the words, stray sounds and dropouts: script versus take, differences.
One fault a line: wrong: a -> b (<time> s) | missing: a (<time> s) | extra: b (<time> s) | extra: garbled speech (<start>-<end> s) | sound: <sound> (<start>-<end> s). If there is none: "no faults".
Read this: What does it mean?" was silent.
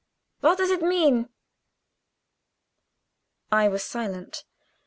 extra: I (3.5 s)